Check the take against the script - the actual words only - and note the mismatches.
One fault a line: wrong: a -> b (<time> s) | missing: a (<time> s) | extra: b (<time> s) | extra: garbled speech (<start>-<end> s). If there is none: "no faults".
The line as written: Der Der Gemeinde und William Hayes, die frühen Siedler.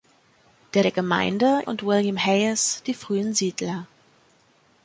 no faults